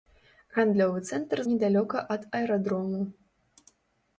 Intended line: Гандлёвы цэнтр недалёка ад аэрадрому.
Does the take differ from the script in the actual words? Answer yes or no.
no